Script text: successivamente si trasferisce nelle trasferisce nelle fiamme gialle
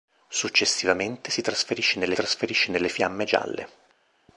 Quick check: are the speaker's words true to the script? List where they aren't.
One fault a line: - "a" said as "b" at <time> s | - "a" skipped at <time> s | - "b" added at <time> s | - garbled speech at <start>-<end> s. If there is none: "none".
none